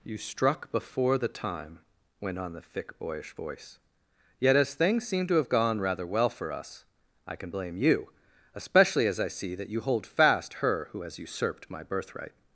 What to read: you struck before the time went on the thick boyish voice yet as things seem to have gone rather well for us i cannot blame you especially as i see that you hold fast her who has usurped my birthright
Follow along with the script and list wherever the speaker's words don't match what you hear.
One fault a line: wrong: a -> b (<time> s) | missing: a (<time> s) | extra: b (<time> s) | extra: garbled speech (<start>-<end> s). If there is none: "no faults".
wrong: cannot -> can (7.3 s)